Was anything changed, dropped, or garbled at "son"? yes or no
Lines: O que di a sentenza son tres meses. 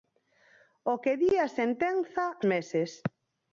yes